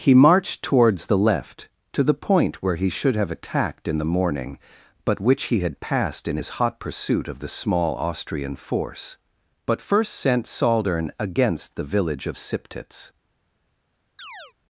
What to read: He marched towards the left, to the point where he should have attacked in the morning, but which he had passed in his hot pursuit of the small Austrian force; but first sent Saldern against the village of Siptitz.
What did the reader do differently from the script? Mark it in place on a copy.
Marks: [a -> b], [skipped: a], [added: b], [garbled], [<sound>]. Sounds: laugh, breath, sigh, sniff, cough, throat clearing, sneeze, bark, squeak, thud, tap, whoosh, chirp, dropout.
He marched towards the left, to the point where he should have attacked in the morning, but which he had passed in his hot pursuit of the small Austrian force; but first sent Saldern against the village of Siptitz. [chirp]